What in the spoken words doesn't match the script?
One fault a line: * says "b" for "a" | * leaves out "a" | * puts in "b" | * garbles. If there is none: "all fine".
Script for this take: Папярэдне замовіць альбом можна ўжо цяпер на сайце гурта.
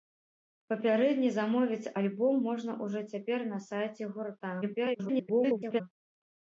* garbles